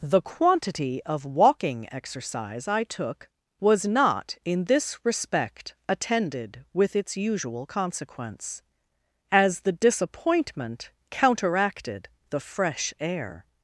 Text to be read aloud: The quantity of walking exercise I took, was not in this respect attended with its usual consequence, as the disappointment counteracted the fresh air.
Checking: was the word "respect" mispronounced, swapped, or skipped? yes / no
no